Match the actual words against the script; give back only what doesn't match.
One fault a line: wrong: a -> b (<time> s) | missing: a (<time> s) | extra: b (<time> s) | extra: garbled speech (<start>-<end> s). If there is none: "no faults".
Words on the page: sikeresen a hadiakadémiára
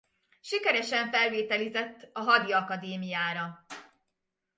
extra: felvételizett (1.1 s)